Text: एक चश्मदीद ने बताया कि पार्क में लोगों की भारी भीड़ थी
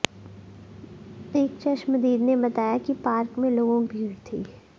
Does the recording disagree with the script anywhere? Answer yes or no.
yes